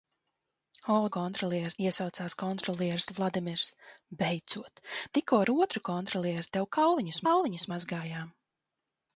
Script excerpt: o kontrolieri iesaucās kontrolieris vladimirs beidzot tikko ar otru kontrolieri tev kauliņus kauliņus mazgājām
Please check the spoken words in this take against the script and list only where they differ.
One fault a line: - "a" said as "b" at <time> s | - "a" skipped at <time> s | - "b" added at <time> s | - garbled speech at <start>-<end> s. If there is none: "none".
none